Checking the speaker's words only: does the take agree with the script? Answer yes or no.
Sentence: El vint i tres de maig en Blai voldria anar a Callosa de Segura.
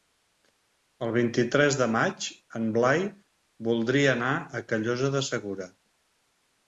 yes